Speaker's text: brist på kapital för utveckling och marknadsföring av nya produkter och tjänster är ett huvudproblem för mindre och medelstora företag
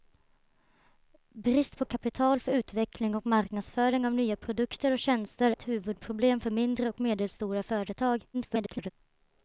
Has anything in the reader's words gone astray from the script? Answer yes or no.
yes